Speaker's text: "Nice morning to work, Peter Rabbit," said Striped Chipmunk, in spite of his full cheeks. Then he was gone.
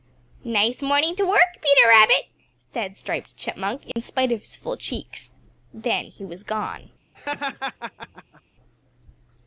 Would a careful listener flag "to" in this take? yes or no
no